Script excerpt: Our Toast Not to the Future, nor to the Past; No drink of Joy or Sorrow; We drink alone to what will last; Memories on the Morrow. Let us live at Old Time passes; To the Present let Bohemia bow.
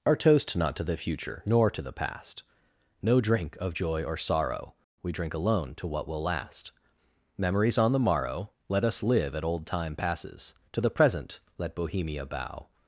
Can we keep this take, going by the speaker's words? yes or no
yes